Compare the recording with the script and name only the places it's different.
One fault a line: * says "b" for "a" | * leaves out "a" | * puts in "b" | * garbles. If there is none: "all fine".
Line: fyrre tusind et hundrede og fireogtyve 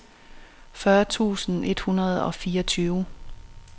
all fine